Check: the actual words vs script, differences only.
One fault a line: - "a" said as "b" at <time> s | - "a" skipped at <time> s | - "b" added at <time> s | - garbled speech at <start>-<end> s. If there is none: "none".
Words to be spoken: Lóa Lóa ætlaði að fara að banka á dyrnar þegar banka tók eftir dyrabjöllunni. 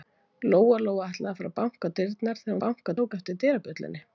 none